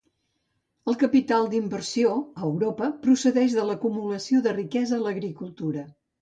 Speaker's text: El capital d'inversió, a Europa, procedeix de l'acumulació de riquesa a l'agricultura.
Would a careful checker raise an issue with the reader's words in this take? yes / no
no